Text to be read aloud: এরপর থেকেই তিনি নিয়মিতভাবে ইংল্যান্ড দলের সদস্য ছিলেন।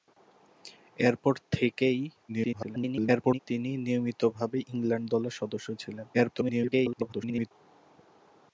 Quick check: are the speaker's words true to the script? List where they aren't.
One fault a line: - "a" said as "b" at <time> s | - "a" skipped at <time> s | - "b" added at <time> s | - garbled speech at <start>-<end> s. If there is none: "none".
- garbled speech at 2.3-3.4 s
- garbled speech at 6.1-7.5 s